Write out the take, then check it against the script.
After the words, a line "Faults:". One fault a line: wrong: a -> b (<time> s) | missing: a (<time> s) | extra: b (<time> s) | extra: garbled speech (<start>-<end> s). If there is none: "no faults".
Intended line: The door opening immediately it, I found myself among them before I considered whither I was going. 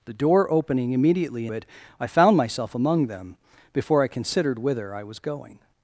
The door opening immediately it, I found myself among them before I considered whither I was going.
Faults:
no faults